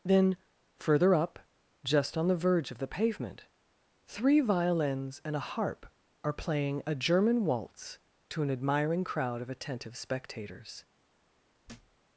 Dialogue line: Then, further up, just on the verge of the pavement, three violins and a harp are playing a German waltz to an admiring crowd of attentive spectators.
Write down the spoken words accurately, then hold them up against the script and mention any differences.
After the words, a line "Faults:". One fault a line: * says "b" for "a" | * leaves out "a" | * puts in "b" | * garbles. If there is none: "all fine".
Then, further up, just on the verge of the pavement, three violins and a harp are playing a German waltz to an admiring crowd of attentive spectators.
Faults:
all fine